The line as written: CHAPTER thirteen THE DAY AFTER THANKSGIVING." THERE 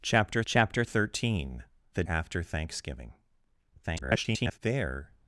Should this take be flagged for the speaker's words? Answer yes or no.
yes